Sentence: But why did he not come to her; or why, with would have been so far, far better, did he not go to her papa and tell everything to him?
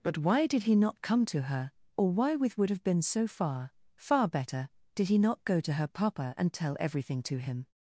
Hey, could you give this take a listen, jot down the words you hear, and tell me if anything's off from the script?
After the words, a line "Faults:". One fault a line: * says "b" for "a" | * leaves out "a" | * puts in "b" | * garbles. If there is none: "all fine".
But why did he not come to her; or why, with would have been so far, far better, did he not go to her papa and tell everything to him?
Faults:
all fine